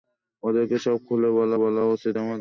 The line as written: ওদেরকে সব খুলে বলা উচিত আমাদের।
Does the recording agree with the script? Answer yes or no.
no